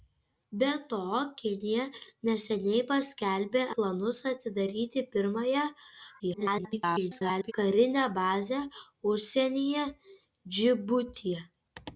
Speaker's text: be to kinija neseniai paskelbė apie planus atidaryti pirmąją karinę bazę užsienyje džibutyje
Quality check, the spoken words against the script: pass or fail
fail